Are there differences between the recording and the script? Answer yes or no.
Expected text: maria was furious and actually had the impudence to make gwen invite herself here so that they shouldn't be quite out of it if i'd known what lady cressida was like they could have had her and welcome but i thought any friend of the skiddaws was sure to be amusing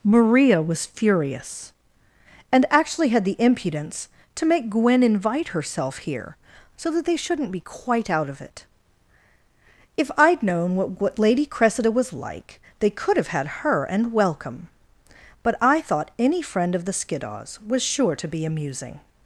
yes